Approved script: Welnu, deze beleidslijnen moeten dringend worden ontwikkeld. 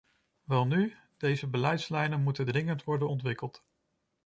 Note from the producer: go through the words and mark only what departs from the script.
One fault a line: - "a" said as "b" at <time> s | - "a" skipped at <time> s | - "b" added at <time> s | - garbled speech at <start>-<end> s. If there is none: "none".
none